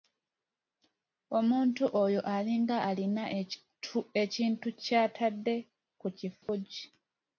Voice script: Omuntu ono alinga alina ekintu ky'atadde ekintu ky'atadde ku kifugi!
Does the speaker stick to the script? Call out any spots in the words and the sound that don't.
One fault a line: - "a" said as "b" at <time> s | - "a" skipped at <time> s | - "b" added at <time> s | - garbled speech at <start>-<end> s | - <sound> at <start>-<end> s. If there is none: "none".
- "ono" said as "oyo" at 2.0 s
- "ekintu ky'atadde" skipped at 5.6 s
- dropout at 6.4-6.5 s